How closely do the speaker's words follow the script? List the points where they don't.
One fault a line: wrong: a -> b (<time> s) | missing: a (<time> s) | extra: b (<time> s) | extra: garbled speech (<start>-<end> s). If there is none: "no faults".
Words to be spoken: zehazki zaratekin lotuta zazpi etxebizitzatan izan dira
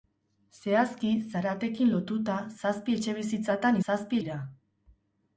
wrong: izan -> zazpi (3.8 s)